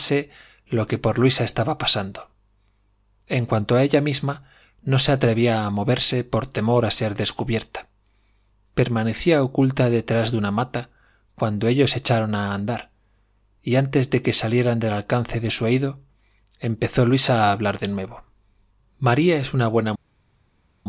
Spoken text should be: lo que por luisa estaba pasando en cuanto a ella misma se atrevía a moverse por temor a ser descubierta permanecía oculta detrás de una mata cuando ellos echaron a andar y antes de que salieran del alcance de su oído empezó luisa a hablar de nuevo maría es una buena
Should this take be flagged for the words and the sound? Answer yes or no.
yes